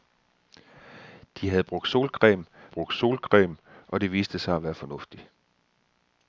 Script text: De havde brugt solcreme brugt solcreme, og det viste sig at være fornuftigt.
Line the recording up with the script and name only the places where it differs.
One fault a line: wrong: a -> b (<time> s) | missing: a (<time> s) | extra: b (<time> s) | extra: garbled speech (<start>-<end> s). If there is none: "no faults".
no faults